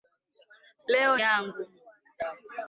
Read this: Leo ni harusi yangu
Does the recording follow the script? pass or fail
fail